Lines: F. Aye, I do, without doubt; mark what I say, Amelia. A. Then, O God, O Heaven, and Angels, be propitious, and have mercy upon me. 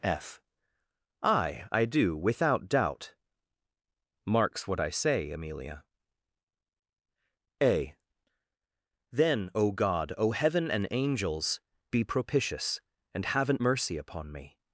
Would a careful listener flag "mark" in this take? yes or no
yes